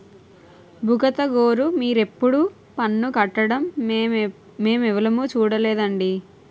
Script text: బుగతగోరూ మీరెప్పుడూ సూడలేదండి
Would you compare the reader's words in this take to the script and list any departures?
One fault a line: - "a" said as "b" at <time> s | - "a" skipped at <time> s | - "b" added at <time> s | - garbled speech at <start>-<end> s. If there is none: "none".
- "పన్ను కట్టడం మేమెవులుమూ" added at 2.8 s